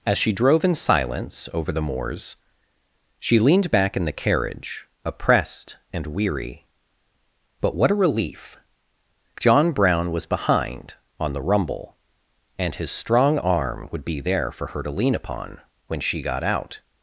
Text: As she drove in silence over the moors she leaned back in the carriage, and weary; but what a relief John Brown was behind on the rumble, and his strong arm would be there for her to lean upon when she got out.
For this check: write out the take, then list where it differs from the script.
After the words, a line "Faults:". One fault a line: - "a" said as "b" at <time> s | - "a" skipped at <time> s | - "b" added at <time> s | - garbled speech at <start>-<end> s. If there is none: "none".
As she drove in silence over the moors she leaned back in the carriage, oppressed and weary; but what a relief John Brown was behind on the rumble, and his strong arm would be there for her to lean upon when she got out.
Faults:
- "oppressed" added at 5.0 s